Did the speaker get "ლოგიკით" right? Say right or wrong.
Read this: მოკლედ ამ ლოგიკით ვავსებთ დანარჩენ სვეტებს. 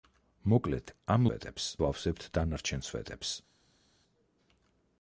wrong